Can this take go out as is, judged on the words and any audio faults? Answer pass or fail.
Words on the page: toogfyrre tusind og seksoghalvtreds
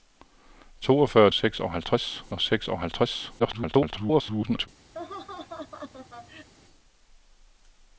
fail